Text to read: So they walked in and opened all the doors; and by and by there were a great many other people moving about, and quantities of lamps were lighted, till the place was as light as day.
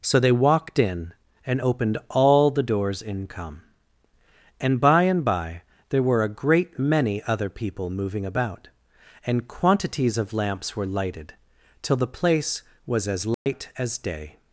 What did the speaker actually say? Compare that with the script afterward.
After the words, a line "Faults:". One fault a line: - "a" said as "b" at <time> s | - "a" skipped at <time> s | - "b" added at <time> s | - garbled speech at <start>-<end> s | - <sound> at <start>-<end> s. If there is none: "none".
So they walked in and opened all the doors; in come and by and by there were a great many other people moving about, and quantities of lamps were lighted, till the place was as light as day.
Faults:
- "in come" added at 3.0 s
- dropout at 13.3-13.5 s